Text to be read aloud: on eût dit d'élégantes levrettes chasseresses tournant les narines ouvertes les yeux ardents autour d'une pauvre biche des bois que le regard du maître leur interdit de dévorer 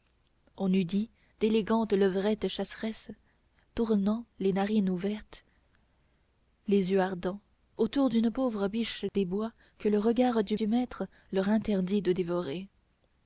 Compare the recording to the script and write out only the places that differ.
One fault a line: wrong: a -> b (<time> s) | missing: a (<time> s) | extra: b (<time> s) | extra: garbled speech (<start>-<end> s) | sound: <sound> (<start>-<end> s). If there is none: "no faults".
sound: dropout (9.1-9.1 s)
extra: du (10.5 s)